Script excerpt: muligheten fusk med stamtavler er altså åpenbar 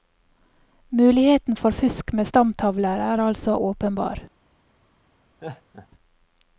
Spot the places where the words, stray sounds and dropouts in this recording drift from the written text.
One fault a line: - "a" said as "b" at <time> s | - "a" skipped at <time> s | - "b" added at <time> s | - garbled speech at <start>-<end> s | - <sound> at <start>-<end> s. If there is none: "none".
- "for" added at 1.6 s
- laugh at 5.4-5.9 s